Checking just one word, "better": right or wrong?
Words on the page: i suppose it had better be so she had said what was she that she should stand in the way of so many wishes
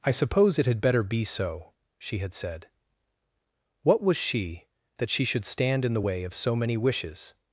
right